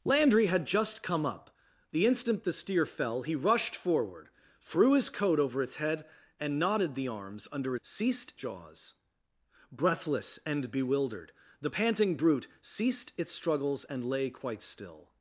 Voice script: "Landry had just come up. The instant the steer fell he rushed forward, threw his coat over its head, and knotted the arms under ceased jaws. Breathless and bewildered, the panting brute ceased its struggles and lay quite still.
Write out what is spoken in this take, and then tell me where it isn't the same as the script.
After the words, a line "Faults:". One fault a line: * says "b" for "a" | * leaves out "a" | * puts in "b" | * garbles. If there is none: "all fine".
"Landry had just come up. The instant the steer fell he rushed forward, threw his coat over its head, and knotted the arms under ceased jaws. Breathless and bewildered, the panting brute ceased its struggles and lay quite still.
Faults:
all fine